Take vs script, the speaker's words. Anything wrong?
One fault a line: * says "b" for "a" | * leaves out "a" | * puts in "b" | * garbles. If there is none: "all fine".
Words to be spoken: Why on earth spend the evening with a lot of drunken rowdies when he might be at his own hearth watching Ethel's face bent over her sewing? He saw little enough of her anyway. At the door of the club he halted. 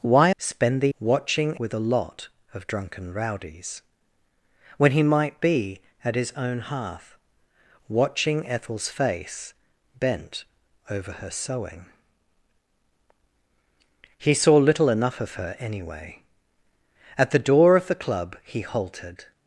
* leaves out "on earth"
* says "watching" for "evening"